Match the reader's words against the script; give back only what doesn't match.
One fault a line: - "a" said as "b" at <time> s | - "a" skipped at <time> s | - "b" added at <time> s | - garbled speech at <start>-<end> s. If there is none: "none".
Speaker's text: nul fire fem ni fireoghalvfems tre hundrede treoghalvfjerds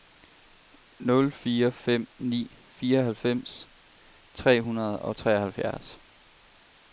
- "og" added at 5.0 s